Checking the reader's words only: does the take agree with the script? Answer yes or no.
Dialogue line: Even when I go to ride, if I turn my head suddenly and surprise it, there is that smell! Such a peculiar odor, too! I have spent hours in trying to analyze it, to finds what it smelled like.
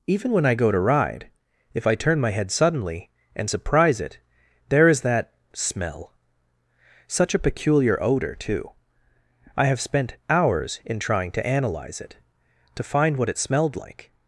no